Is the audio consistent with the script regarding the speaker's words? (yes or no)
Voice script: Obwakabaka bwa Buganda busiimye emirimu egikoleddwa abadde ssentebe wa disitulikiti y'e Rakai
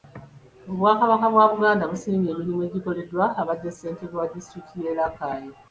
yes